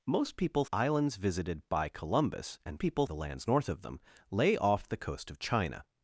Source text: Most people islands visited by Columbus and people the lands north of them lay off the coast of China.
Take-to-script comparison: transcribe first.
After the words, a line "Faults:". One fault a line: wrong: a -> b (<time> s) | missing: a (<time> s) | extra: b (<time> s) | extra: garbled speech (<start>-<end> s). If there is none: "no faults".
Most people islands visited by Columbus and people the lands north of them lay off the coast of China.
Faults:
no faults